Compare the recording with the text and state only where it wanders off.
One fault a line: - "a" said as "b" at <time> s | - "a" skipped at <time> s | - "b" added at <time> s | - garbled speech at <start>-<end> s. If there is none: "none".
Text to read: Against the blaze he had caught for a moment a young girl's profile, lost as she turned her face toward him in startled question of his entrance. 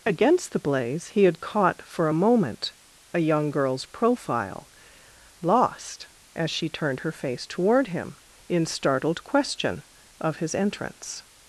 none